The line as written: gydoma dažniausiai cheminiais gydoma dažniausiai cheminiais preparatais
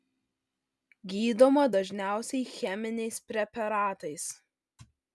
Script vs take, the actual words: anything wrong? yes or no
yes